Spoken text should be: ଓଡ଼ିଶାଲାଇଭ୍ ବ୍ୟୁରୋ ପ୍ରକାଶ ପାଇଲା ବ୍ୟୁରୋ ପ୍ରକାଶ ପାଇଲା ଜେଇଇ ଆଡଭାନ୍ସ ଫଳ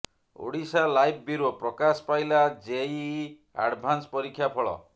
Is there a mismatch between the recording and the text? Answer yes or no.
yes